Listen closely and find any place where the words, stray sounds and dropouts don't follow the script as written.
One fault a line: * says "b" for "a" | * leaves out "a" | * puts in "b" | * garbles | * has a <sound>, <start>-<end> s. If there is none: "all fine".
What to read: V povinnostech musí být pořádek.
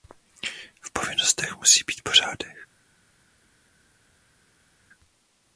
all fine